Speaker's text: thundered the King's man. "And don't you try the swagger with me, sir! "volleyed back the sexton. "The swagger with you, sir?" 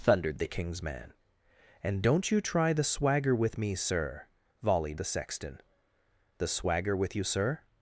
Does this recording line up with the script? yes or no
no